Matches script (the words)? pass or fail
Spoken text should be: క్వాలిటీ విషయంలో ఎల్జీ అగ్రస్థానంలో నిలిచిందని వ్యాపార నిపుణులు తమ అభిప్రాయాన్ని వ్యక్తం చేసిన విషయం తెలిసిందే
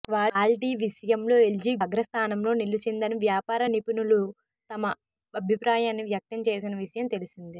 pass